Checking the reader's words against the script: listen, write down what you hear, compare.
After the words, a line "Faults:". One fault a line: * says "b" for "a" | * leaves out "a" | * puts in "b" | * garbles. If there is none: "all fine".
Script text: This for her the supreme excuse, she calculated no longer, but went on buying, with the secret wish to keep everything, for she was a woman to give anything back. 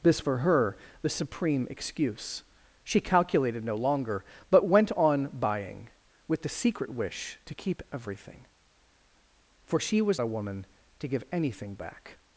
This for her the supreme excuse, she calculated no longer, but went on buying, with the secret wish to keep everything, for she was a woman to give anything back.
Faults:
all fine